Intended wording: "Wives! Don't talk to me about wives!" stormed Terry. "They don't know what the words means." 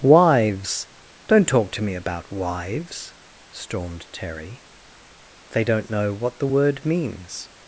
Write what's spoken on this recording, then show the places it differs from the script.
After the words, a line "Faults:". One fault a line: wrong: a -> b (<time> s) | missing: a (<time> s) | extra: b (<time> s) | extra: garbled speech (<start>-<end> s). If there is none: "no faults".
"Wives! Don't talk to me about wives!" stormed Terry. "They don't know what the word means."
Faults:
wrong: words -> word (6.4 s)